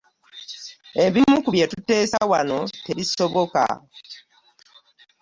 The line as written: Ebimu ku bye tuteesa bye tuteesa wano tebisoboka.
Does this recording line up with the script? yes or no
no